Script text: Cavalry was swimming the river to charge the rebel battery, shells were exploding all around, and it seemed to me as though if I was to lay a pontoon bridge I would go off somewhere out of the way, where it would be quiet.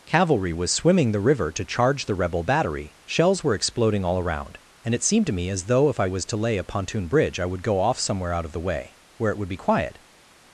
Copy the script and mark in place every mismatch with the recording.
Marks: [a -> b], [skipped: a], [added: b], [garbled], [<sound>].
Cavalry was swimming the river to charge the rebel battery, shells were exploding all around, and it seemed to me as though if I was to lay a pontoon bridge I would go off somewhere out of the way, where it would be quiet.